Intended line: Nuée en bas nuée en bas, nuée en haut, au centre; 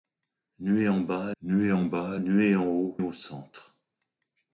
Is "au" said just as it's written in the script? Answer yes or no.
yes